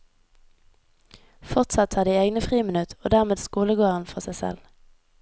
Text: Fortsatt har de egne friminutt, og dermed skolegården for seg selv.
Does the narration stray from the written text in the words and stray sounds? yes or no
no